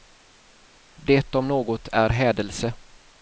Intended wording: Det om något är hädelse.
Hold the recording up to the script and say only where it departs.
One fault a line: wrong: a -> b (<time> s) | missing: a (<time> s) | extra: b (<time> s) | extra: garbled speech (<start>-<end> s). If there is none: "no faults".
no faults